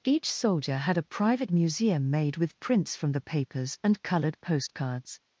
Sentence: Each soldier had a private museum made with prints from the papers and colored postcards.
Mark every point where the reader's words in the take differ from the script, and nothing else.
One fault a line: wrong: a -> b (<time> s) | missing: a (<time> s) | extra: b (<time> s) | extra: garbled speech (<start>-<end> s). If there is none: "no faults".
no faults